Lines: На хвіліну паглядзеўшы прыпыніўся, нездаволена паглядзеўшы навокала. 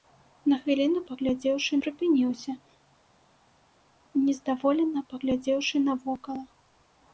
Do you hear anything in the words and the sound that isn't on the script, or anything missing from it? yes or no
no